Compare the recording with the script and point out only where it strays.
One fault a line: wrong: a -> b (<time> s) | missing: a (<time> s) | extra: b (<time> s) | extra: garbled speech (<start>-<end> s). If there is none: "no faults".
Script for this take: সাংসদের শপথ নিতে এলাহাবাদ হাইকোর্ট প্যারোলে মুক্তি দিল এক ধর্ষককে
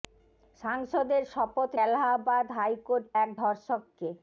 missing: নিতে (1.7 s)
missing: প্যারোলে মুক্তি দিল (3.0 s)